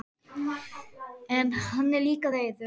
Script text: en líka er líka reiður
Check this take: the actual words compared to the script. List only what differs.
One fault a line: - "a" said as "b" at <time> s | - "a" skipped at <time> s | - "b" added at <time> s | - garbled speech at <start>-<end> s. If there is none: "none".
- "líka" said as "hann" at 1.7 s